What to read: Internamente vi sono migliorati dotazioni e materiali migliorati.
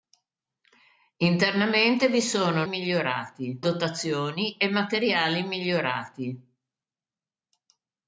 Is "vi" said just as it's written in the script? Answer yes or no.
yes